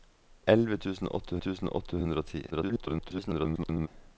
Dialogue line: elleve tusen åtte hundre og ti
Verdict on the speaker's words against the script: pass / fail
fail